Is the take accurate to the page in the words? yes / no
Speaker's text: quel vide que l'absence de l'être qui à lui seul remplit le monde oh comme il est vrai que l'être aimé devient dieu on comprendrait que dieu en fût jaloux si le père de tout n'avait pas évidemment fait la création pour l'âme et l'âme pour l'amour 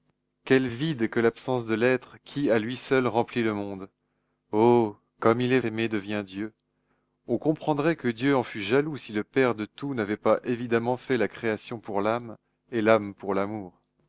no